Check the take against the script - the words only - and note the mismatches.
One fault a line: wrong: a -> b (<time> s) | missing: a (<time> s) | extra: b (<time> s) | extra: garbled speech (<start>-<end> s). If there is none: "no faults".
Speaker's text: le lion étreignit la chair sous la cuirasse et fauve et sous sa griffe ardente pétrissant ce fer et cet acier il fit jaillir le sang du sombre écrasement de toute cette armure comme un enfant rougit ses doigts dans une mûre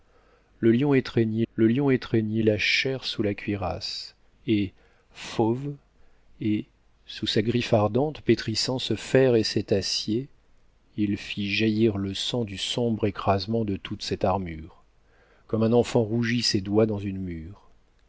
extra: le lion étreignit (1.5 s)